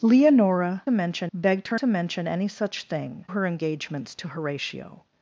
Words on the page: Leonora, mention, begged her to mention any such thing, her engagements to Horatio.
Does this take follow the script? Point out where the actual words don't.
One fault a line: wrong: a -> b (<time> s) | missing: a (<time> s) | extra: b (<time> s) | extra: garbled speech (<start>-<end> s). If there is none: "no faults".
no faults